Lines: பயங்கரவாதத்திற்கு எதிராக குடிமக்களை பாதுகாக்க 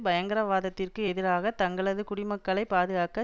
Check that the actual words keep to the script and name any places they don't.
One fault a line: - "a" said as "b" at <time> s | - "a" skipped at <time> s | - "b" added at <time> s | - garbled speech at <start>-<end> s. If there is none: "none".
- "தங்களது" added at 1.6 s